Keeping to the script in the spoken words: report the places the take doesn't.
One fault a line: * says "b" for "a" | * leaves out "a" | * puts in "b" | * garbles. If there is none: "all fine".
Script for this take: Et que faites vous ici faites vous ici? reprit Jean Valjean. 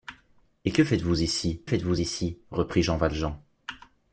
all fine